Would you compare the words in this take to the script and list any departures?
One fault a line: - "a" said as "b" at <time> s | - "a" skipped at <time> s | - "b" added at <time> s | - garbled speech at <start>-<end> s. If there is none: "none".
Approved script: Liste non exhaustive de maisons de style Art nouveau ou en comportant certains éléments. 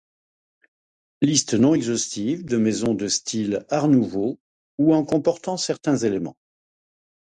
none